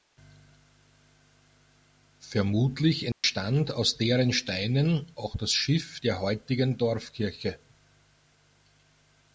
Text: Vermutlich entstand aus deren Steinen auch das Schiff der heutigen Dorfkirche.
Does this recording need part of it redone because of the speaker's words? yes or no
no